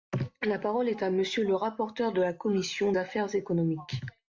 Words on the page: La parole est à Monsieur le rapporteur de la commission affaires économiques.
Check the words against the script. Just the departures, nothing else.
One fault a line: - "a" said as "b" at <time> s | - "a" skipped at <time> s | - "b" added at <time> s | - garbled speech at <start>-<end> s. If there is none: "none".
none